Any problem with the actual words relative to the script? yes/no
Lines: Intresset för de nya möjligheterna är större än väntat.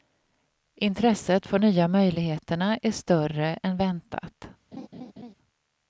yes